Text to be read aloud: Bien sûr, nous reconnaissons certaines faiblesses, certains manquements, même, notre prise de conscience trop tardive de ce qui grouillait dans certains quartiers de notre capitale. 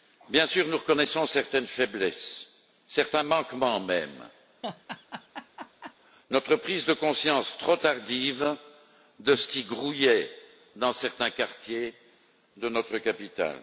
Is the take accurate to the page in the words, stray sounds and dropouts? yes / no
no